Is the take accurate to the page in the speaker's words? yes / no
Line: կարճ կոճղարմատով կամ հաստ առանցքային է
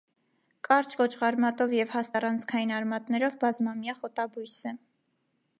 no